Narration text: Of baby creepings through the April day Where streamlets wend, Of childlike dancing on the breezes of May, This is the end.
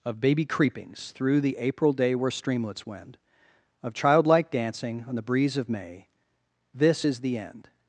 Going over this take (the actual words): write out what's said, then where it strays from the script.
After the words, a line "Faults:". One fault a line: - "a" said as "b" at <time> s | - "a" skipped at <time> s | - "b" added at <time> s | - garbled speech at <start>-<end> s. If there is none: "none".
Of baby creepings through the April day Where streamlets wend, Of childlike dancing on the breeze of May, This is the end.
Faults:
- "breezes" said as "breeze" at 5.2 s